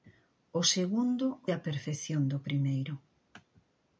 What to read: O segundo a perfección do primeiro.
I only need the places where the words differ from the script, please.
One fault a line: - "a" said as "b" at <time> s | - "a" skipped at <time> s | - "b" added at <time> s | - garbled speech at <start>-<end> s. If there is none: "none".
none